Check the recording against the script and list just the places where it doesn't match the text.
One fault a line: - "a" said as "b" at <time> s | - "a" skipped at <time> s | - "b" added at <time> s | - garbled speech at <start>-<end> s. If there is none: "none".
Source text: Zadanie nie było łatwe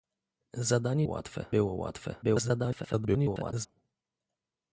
- "nie" said as "łatwe" at 1.0 s
- garbled speech at 2.2-3.7 s